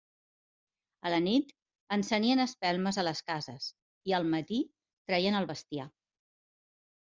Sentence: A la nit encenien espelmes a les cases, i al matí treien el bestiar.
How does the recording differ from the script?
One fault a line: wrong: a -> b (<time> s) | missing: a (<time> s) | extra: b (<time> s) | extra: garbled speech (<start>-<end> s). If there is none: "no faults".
no faults